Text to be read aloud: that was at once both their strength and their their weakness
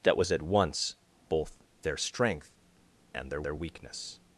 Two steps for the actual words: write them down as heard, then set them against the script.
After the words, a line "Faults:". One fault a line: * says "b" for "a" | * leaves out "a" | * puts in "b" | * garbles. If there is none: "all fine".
that was at once both their strength and their their weakness
Faults:
all fine